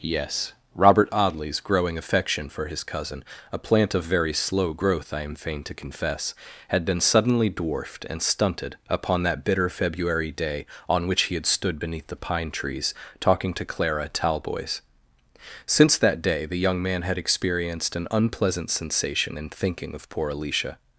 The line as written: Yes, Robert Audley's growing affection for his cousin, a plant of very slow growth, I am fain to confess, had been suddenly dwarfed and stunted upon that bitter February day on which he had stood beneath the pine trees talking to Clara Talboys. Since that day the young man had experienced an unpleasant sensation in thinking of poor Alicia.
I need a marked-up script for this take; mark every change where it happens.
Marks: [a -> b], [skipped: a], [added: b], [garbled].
Yes, Robert Audley's growing affection for his cousin, a plant of very slow growth, I am fain to confess, had been suddenly dwarfed and stunted upon that bitter February day on which he had stood beneath the pine trees talking to Clara Talboys. Since that day the young man had experienced an unpleasant sensation in thinking of poor Alicia.